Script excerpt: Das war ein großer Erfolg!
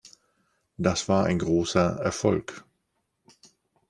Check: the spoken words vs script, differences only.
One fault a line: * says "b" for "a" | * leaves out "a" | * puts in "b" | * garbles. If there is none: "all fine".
all fine